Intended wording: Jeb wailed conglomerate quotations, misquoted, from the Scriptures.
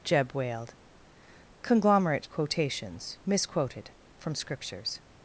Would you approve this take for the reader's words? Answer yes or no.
no